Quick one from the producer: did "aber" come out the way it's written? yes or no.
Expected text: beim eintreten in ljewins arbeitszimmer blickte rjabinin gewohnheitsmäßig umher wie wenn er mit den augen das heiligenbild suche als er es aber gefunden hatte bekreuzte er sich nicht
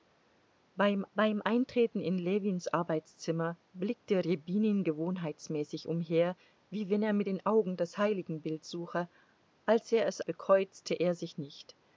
no